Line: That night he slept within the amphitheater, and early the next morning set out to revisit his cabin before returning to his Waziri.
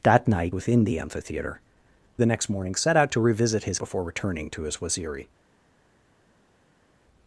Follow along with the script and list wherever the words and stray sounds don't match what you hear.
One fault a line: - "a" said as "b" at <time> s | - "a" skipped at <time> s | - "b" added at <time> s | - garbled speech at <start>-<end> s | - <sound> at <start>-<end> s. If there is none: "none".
- "he slept" skipped at 0.6 s
- "and early" skipped at 1.6 s
- "cabin" skipped at 3.8 s